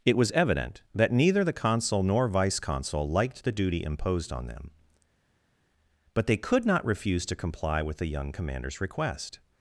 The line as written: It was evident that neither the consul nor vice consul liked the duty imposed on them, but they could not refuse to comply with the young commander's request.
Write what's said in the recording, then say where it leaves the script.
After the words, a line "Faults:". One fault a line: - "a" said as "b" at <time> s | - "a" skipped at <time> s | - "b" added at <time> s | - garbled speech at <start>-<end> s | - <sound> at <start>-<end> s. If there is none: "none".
It was evident that neither the consul nor vice consul liked the duty imposed on them, but they could not refuse to comply with the young commander's request.
Faults:
none